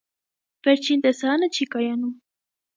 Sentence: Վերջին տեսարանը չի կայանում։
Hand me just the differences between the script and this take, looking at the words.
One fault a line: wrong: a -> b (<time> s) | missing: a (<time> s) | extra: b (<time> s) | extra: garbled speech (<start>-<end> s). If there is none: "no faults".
no faults